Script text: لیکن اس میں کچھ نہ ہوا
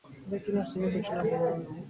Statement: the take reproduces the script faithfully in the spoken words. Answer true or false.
true